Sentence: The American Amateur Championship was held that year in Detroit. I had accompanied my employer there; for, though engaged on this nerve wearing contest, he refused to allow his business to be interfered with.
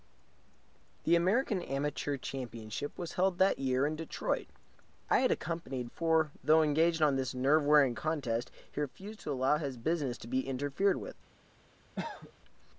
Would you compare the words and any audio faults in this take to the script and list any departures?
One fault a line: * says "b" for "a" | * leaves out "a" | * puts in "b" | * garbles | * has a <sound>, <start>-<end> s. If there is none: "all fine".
* leaves out "my employer there"
* has a cough, 11.9-12.3 s